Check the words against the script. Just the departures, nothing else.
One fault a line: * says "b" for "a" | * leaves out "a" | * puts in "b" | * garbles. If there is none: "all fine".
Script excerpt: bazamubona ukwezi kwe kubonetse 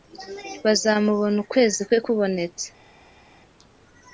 all fine